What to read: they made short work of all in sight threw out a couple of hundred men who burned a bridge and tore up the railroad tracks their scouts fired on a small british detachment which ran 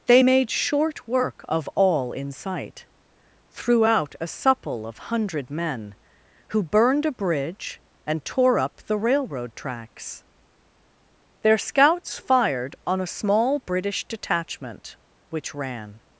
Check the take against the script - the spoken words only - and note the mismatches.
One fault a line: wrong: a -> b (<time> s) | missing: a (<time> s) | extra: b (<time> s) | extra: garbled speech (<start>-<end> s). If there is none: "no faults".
wrong: couple -> supple (4.3 s)